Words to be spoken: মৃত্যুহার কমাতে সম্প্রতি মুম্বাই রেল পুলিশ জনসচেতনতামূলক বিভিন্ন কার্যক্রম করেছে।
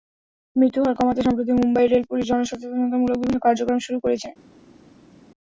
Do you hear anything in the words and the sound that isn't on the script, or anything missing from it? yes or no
yes